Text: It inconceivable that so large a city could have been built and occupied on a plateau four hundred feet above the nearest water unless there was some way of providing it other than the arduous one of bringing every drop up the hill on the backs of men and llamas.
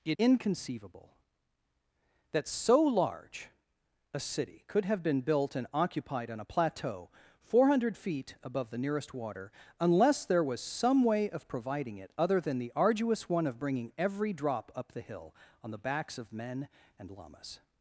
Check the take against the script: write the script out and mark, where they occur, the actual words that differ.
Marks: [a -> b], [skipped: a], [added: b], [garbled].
It inconceivable that so large a city could have been built and occupied on a plateau four hundred feet above the nearest water unless there was some way of providing it other than the arduous one of bringing every drop up the hill on the backs of men and llamas.